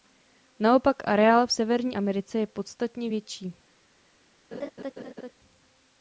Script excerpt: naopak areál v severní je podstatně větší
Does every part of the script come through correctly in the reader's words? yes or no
no